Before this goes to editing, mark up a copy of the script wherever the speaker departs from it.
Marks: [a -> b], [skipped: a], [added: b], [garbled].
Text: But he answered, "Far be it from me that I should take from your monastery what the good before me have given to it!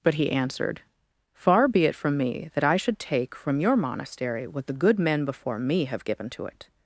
But he answered, "Far be it from me that I should take from your monastery what the good [added: men] before me have given to it!